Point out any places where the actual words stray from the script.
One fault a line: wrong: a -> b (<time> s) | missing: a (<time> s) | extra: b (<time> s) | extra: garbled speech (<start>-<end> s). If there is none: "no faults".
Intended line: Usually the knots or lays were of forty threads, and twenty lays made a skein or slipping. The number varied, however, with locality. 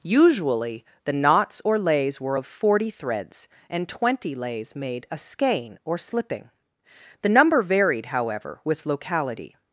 no faults